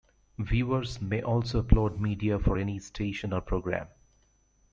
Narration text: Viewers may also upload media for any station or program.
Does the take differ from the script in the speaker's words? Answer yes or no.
no